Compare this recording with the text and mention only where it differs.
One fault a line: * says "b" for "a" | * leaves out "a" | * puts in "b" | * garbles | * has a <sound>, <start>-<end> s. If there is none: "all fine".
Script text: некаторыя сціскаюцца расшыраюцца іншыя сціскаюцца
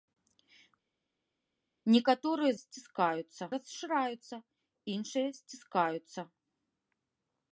all fine